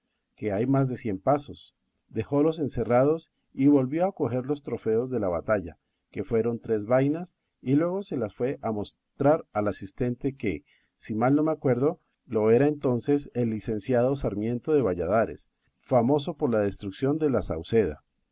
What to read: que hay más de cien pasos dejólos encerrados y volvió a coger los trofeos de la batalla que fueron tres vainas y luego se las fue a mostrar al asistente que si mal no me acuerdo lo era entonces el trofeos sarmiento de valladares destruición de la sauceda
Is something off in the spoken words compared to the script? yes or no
yes